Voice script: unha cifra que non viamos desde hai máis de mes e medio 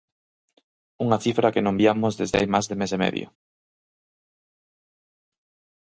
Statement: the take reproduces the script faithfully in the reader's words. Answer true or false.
true